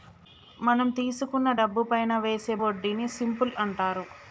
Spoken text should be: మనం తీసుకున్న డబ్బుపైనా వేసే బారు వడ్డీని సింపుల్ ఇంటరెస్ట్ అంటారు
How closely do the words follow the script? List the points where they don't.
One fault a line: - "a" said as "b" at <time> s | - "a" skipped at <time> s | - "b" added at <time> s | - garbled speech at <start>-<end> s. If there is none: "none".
- "బారు" skipped at 2.5 s
- "ఇంటరెస్ట్" skipped at 3.5 s